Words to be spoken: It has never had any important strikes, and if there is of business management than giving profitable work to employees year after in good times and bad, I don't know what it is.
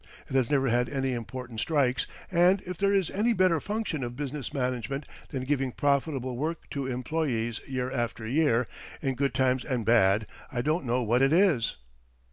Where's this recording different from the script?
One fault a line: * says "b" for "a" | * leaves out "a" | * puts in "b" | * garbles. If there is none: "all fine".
* puts in "any better function"
* puts in "year"